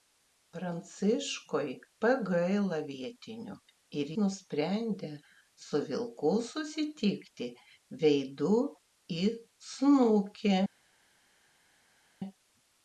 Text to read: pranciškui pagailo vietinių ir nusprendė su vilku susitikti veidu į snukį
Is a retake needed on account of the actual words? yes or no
no